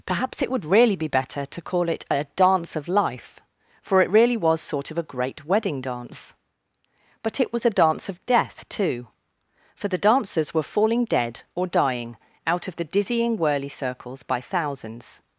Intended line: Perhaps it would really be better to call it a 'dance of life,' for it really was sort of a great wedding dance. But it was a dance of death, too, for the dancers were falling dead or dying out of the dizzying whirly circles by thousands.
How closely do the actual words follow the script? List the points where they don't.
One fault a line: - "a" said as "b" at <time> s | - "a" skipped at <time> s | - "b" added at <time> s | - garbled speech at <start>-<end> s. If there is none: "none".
none